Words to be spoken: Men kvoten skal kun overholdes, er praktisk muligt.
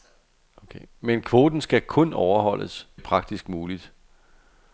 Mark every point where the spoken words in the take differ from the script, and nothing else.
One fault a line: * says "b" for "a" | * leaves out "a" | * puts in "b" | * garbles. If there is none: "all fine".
all fine